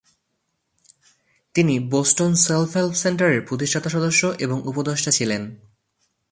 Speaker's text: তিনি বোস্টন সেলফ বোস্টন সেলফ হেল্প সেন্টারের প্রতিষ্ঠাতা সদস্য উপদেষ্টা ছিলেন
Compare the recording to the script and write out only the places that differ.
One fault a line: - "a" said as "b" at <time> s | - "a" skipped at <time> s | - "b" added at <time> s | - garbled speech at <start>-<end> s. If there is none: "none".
- "বোস্টন সেলফ" skipped at 2.8 s
- "এবং" added at 4.4 s